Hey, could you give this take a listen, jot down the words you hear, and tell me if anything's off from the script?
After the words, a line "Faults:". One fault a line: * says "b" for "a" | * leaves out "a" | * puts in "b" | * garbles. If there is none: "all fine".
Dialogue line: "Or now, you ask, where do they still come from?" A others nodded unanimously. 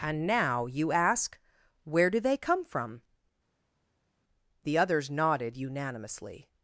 "And now, you ask, where do they come from?" The others nodded unanimously.
Faults:
* says "And" for "Or"
* leaves out "still"
* says "The" for "A"